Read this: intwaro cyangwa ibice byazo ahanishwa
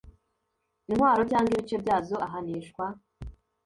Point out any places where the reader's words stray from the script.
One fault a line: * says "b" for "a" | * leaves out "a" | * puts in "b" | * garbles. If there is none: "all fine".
all fine